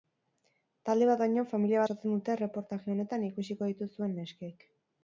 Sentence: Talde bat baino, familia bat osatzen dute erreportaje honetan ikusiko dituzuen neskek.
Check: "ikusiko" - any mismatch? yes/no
no